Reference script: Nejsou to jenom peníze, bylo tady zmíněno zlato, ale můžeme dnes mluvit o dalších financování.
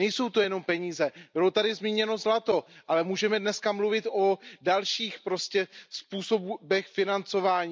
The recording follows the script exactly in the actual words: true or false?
false